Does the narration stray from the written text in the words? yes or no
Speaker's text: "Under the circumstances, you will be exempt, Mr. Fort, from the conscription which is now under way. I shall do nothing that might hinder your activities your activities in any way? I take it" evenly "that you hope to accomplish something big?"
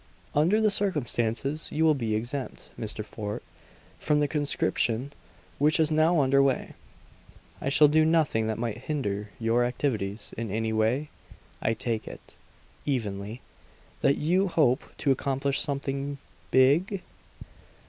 yes